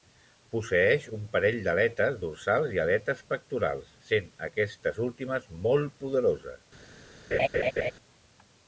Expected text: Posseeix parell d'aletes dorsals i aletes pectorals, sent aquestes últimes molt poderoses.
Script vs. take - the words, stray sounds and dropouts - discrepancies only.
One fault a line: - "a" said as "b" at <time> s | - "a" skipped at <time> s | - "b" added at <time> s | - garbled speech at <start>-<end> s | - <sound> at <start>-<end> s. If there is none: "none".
- "un" added at 1.2 s
- laugh at 7.3-7.9 s